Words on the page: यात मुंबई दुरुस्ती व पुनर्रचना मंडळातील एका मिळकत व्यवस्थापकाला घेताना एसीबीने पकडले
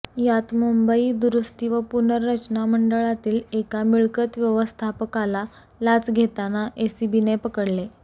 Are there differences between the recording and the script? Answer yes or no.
yes